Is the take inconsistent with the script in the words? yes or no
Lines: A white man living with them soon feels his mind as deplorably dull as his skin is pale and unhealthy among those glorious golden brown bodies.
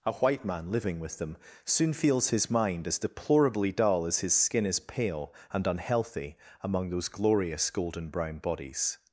no